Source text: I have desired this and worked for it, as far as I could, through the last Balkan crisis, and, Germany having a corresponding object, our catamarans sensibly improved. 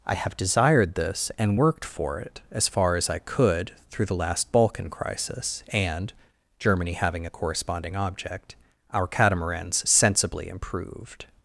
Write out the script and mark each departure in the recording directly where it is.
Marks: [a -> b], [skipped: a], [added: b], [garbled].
I have desired this and worked for it, as far as I could, through the last Balkan crisis, and, Germany having a corresponding object, our catamarans sensibly improved.